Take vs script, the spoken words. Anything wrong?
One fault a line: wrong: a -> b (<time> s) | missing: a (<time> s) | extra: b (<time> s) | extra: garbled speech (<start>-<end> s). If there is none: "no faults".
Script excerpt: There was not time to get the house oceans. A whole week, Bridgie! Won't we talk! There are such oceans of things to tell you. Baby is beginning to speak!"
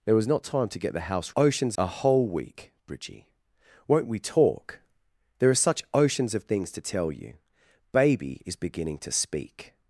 no faults